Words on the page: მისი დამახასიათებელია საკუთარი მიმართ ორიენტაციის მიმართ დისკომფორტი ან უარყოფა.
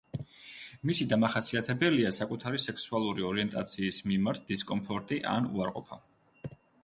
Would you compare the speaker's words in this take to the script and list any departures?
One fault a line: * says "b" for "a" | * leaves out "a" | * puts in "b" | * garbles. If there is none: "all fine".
* says "სექსუალური" for "მიმართ"